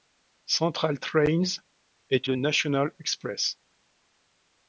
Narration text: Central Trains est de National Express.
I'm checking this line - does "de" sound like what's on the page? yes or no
yes